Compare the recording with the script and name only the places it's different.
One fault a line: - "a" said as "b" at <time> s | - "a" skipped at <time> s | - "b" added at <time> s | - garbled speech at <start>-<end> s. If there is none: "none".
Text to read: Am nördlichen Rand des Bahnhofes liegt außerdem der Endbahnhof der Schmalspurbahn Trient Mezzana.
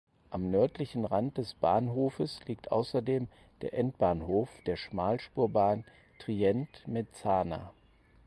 none